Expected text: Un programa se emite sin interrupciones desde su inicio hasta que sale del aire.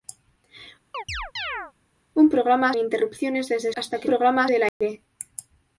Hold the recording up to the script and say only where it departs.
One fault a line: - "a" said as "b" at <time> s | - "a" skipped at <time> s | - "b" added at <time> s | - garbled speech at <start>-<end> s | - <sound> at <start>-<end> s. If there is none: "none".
- chirp at 0.9-1.7 s
- "se emite sin" skipped at 2.7 s
- "su inicio" skipped at 3.7 s
- "sale" said as "programa" at 4.0 s
- dropout at 4.7-4.8 s